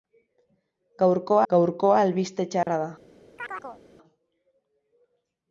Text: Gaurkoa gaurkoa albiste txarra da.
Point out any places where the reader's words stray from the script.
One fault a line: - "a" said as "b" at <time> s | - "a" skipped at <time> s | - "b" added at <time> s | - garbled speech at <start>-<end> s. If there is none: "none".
none